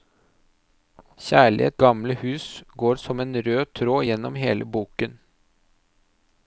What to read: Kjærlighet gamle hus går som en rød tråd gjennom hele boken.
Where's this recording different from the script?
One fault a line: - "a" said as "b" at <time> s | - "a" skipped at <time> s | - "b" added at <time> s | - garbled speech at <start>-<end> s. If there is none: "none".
none